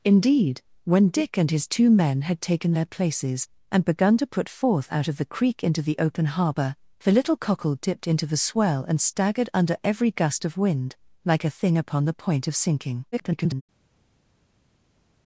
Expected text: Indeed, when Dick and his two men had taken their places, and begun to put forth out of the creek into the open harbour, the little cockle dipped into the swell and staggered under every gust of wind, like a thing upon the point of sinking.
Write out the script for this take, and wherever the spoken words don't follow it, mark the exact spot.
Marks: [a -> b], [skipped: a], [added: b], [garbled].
Indeed, when Dick and his two men had taken their places, and begun to put forth out of the creek into the open harbour, the little cockle dipped into the swell and staggered under every gust of wind, like a thing upon the point of sinking. [garbled]